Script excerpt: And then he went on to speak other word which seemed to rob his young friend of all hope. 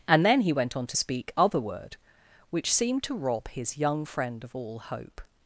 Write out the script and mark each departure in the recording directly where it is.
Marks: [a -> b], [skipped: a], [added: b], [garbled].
And then he went on to speak other word which seemed to rob his young friend of all hope.